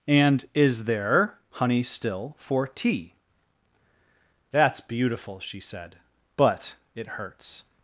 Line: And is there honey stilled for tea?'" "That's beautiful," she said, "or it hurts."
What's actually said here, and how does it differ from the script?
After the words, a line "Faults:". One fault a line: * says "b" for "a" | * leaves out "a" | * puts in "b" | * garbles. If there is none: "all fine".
And is there honey still for tea?'" "That's beautiful," she said, "but it hurts."
Faults:
* says "still" for "stilled"
* says "but" for "or"